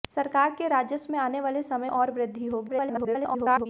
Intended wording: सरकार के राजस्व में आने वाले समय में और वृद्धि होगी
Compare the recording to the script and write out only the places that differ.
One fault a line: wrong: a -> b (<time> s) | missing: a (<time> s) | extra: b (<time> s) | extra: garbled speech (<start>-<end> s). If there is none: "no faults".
missing: में (1.9 s)
extra: garbled speech (2.7-3.7 s)